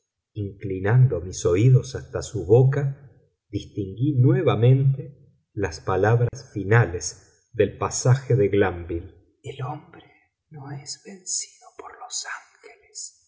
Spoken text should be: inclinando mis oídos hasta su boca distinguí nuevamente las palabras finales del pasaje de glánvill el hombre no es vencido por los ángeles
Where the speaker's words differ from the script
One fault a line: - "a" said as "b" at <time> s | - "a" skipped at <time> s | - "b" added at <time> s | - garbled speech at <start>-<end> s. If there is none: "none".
none